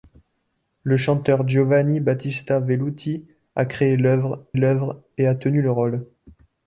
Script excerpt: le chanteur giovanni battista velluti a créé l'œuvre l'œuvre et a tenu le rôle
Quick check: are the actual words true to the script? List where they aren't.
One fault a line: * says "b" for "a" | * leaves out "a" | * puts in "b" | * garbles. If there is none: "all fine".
all fine